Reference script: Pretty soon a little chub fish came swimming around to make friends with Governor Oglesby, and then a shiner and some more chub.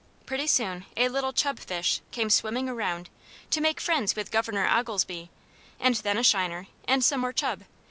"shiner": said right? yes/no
yes